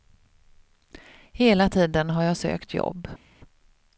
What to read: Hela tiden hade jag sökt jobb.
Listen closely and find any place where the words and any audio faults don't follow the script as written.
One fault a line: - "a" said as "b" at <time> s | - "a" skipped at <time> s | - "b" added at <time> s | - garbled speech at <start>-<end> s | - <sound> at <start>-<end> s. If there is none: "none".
- "hade" said as "har" at 2.1 s